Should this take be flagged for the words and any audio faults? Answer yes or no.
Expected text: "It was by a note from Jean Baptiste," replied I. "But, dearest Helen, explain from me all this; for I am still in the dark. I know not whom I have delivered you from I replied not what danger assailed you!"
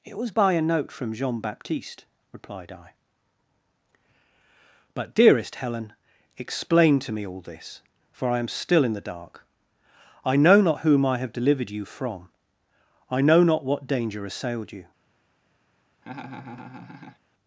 yes